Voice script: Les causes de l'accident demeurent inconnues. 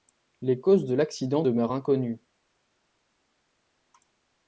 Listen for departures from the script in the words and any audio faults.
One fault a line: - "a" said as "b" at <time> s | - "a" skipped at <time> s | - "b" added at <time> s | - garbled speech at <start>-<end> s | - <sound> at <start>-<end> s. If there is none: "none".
none